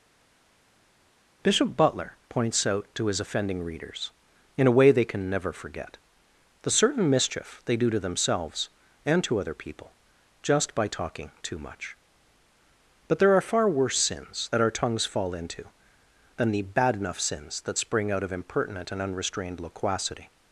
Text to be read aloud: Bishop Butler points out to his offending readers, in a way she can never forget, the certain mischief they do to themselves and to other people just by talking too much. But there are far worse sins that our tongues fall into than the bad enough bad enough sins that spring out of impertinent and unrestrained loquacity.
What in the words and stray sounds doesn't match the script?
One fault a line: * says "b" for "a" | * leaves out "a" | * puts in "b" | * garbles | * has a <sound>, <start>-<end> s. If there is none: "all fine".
* says "they" for "she"
* leaves out "bad enough"